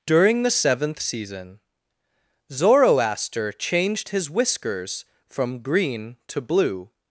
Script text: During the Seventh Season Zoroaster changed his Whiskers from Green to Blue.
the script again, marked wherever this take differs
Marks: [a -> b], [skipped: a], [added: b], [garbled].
During the Seventh Season Zoroaster changed his Whiskers from Green to Blue.